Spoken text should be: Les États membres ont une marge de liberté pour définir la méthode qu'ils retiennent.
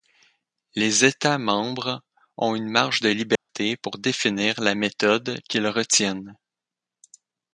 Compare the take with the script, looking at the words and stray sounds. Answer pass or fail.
fail